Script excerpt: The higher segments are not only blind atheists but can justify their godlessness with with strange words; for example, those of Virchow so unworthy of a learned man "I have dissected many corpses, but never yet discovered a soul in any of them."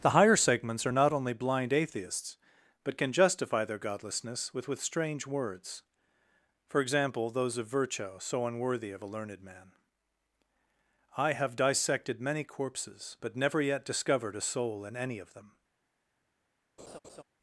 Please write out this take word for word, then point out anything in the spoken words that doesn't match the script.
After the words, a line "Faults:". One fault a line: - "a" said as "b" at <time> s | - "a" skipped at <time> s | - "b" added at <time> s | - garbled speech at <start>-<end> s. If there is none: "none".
The higher segments are not only blind atheists but can justify their godlessness with with strange words; for example, those of Virchow so unworthy of a learned man "I have dissected many corpses, but never yet discovered a soul in any of them."
Faults:
none